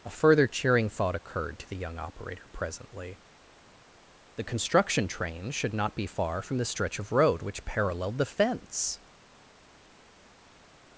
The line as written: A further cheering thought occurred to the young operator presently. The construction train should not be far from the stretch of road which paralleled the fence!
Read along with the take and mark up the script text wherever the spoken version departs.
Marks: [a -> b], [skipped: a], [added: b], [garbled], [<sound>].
A further cheering thought occurred to the young operator presently. The construction train should not be far from the stretch of road which paralleled the fence!